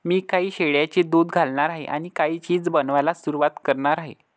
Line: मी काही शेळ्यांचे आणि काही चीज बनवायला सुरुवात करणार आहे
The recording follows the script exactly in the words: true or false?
false